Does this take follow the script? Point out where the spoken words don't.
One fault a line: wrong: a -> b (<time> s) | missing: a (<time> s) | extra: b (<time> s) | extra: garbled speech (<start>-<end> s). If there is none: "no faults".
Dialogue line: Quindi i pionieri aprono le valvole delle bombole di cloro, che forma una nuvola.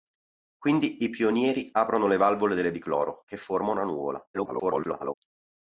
missing: bombole (2.7 s)
extra: garbled speech (4.3-5.1 s)